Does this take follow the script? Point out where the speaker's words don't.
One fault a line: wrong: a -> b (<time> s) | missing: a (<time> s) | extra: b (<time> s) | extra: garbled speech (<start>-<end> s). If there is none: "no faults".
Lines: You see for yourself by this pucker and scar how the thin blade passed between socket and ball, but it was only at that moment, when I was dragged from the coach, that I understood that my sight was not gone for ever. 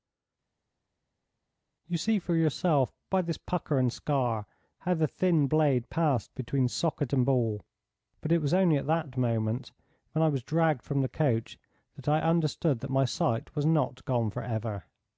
no faults